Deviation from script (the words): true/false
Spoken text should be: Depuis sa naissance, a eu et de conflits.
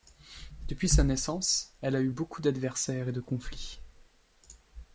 true